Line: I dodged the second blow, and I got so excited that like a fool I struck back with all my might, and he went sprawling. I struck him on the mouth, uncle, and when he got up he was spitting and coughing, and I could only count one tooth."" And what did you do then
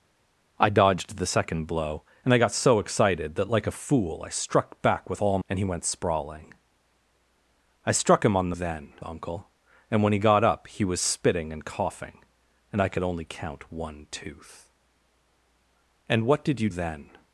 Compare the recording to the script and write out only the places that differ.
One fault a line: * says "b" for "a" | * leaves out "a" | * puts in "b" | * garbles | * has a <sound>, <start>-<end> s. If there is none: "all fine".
* leaves out "my might"
* says "then" for "mouth"
* leaves out "do"